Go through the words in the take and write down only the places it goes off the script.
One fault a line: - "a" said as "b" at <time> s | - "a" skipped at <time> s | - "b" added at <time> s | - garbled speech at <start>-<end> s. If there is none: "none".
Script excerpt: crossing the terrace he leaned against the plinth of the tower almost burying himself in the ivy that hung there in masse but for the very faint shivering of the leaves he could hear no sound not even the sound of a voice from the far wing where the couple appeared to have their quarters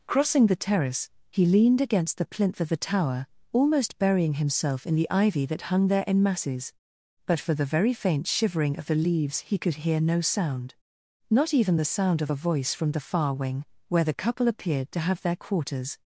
- "masse" said as "masses" at 6.2 s